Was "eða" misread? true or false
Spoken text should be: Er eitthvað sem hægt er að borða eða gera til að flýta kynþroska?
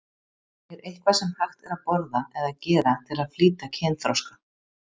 false